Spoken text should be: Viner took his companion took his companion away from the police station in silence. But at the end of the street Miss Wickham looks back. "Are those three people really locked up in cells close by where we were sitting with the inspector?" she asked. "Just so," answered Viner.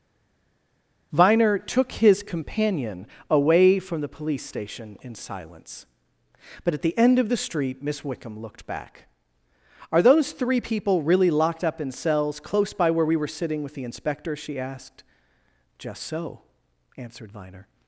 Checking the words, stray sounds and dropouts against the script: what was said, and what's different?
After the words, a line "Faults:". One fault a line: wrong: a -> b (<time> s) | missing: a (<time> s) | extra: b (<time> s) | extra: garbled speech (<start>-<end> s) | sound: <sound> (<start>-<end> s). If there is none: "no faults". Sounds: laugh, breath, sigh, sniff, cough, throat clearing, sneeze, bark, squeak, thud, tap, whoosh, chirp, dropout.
Viner took his companion away from the police station in silence. But at the end of the street Miss Wickham looked back. "Are those three people really locked up in cells close by where we were sitting with the inspector?" she asked. "Just so," answered Viner.
Faults:
missing: took his companion (3.0 s)
wrong: looks -> looked (8.4 s)